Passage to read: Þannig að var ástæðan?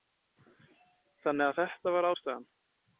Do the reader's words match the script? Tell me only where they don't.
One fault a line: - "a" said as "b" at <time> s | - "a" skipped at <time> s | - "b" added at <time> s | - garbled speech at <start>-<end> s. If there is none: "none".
- "þetta" added at 1.6 s